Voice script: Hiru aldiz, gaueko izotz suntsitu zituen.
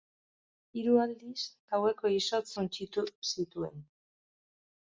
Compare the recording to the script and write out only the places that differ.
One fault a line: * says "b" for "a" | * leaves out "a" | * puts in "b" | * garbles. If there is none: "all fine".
all fine